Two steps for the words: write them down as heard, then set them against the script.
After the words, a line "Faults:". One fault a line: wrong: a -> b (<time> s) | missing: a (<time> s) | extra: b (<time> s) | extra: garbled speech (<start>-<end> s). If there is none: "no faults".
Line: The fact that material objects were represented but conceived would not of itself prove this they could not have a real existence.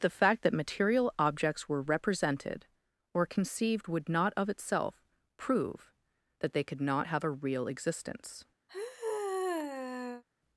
The fact that material objects were represented or conceived would not of itself prove that they could not have a real existence.
Faults:
wrong: but -> or (3.1 s)
wrong: this -> that (6.4 s)